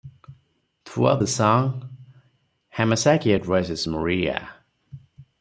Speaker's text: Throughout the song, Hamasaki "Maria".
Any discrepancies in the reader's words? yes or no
yes